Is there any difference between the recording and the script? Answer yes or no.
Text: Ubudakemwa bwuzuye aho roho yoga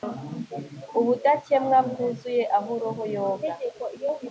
no